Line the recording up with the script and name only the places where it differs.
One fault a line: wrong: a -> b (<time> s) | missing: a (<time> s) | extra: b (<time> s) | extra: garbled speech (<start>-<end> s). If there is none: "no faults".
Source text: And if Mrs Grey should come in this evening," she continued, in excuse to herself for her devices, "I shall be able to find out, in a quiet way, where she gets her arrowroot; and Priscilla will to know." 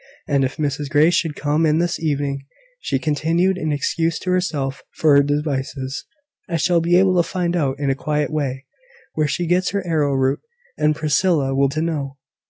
no faults